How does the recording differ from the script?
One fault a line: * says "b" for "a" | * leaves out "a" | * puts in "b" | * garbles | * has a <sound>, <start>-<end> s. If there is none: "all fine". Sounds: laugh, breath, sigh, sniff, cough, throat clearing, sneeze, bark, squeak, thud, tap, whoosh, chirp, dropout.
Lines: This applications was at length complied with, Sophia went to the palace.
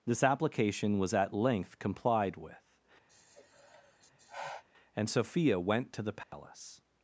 * says "application" for "applications"
* has a sigh, 3.1-4.6 s
* puts in "and"
* has a dropout, 6.2-6.3 s